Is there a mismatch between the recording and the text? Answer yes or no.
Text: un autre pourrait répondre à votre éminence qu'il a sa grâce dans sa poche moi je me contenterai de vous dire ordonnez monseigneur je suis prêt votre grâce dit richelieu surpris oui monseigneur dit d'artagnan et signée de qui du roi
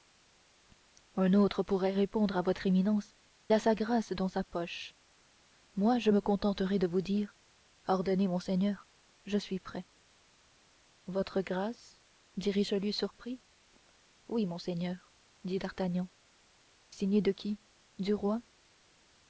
yes